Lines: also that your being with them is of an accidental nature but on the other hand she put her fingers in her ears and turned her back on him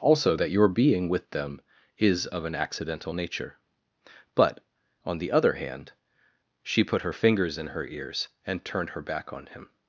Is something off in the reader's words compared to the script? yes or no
no